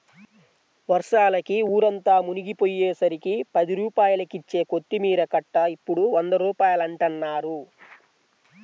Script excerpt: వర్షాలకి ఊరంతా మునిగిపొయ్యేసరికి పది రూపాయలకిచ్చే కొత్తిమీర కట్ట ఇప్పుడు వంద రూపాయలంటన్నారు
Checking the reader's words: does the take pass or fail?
pass